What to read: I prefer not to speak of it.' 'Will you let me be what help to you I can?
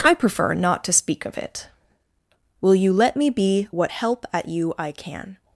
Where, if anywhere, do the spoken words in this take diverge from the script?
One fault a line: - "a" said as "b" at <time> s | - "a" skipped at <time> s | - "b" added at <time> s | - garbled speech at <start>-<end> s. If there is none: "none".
- "to" said as "at" at 4.3 s